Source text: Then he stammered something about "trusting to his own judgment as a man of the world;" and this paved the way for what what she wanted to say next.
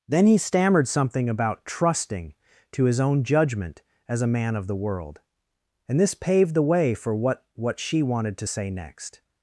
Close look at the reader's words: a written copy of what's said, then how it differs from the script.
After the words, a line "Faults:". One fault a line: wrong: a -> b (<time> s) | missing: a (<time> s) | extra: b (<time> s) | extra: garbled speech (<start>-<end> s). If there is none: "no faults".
Then he stammered something about "trusting to his own judgment as a man of the world;" and this paved the way for what what she wanted to say next.
Faults:
no faults